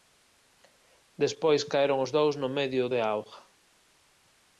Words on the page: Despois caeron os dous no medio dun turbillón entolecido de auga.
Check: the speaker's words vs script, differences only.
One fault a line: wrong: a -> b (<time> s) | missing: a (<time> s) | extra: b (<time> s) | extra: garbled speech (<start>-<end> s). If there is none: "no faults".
missing: dun turbillón entolecido (2.8 s)